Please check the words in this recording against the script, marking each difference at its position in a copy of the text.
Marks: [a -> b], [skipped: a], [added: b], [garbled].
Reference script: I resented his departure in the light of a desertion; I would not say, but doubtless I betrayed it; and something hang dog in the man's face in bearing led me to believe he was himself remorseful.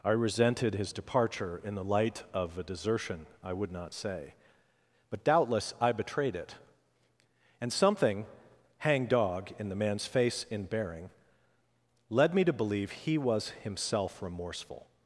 I resented his departure in the light of a desertion; I would not say, but doubtless I betrayed it; and something hang dog in the man's face in bearing led me to believe he was himself remorseful.